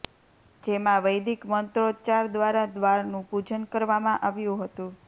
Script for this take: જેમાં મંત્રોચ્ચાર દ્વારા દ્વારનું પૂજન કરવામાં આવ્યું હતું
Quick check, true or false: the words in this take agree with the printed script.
false